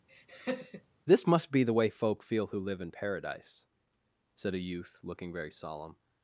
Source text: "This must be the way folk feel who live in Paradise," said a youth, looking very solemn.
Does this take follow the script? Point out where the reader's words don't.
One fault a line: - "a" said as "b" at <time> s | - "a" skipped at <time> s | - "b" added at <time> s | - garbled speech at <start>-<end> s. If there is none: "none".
none